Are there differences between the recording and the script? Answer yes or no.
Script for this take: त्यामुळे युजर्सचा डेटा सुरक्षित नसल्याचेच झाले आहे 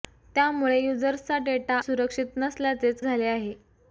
no